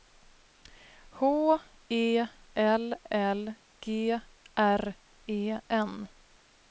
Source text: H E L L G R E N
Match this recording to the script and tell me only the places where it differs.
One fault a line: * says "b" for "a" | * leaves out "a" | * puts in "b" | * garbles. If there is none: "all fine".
all fine